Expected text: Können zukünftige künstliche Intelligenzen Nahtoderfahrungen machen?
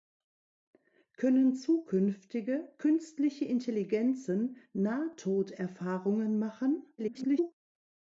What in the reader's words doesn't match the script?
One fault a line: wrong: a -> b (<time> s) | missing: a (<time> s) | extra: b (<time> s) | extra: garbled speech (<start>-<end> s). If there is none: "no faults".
extra: garbled speech (7.0-7.5 s)